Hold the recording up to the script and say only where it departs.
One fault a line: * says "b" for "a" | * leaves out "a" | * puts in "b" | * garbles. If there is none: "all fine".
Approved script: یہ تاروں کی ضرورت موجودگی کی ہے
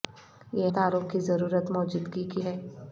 all fine